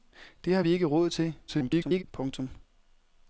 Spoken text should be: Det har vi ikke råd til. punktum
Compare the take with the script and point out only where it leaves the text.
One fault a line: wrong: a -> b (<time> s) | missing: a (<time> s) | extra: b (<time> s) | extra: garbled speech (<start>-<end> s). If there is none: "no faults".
extra: garbled speech (1.5-2.0 s)